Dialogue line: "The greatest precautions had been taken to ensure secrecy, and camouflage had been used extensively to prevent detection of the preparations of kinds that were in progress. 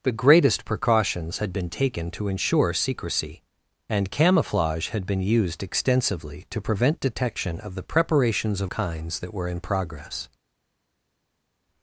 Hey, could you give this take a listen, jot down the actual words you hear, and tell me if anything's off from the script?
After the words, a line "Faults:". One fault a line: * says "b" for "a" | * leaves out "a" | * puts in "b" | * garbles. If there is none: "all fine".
"The greatest precautions had been taken to ensure secrecy, and camouflage had been used extensively to prevent detection of the preparations of kinds that were in progress.
Faults:
all fine